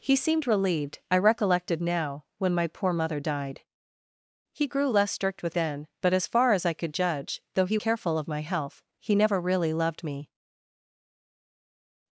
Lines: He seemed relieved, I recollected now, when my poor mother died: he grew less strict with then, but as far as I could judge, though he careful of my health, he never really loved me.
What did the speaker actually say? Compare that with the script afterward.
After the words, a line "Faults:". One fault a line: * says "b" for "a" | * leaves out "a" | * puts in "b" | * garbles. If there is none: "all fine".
He seemed relieved, I recollected now, when my poor mother died: he grew less strict with then, but as far as I could judge, though he careful of my health, he never really loved me.
Faults:
all fine